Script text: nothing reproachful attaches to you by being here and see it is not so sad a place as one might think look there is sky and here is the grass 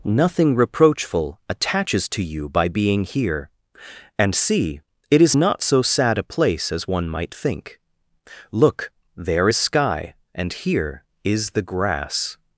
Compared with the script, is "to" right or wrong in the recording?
right